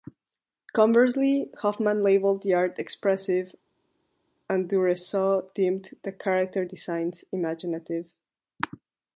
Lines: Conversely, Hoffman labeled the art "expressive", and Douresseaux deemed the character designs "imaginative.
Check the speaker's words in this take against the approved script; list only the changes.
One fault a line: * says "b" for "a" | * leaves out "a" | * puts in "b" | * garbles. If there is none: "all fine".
all fine